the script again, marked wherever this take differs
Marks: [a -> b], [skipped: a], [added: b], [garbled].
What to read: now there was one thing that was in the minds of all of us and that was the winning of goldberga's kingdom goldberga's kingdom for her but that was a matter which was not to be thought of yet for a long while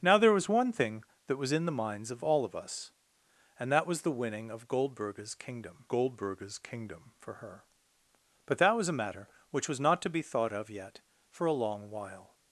now there was one thing that was in the minds of all of us and that was the winning of goldberga's kingdom goldberga's kingdom for her but that was a matter which was not to be thought of yet for a long while